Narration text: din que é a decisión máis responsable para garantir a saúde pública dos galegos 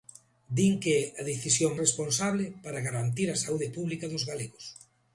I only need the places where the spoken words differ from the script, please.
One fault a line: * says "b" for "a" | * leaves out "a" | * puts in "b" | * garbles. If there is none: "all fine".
* leaves out "máis"